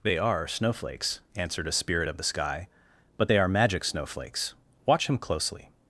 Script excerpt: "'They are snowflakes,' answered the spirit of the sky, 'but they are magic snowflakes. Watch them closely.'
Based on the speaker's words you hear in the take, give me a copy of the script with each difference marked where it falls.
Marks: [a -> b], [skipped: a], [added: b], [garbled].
"'They are snowflakes,' answered [the -> a] spirit of the sky, 'but they are magic snowflakes. Watch [them -> him] closely.'